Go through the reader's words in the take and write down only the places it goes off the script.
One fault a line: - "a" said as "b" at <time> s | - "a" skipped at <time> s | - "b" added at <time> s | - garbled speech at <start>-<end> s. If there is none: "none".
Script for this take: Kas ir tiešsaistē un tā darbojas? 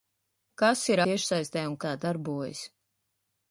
none